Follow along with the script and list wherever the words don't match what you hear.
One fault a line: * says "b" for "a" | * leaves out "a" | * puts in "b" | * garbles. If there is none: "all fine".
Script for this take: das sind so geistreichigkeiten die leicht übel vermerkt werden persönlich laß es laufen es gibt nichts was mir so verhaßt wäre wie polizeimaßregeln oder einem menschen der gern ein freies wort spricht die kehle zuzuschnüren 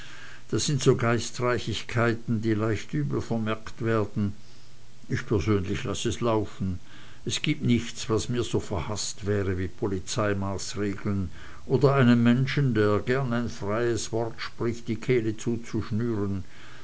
* puts in "ich"